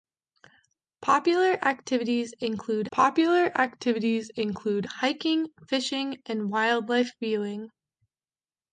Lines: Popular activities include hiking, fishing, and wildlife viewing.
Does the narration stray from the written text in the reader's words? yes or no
yes